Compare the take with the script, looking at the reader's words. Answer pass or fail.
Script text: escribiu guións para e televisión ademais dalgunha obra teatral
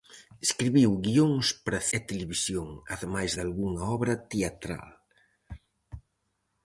pass